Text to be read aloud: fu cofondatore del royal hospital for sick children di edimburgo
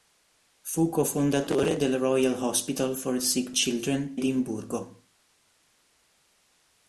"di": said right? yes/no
no